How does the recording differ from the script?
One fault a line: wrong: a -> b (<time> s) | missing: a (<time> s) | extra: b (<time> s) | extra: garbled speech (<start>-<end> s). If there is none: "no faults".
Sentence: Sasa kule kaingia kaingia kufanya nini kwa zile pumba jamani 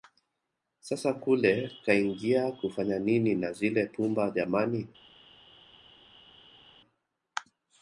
missing: kaingia (2.5 s)
wrong: kwa -> na (3.4 s)